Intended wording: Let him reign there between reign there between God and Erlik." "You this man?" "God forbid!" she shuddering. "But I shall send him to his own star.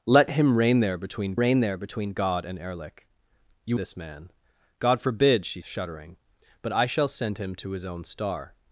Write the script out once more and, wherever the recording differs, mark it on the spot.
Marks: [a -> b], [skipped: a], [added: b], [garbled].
Let him reign there between reign there between God and Erlik." "You this man?" "God forbid!" she shuddering. "But I shall send him to his own star.